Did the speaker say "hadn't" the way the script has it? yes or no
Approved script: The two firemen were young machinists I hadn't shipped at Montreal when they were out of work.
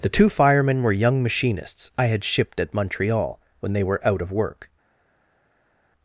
no